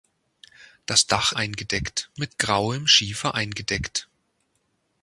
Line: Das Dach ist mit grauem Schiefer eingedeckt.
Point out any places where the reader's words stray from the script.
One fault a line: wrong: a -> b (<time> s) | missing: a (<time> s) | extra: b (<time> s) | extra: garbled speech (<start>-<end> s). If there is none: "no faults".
wrong: ist -> eingedeckt (1.4 s)